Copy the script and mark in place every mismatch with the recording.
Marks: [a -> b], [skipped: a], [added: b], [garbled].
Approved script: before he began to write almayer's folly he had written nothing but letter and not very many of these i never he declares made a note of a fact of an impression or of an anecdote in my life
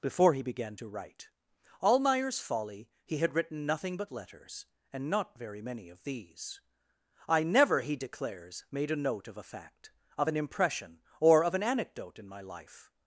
before he began to write almayer's folly he had written nothing but [letter -> letters] and not very many of these i never he declares made a note of a fact of an impression or of an anecdote in my life